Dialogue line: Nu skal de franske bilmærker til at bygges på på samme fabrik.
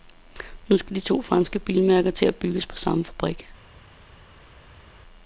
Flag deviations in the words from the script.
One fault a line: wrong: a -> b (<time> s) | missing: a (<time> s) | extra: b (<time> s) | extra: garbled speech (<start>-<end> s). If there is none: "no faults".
extra: to (1.0 s)
missing: på (2.8 s)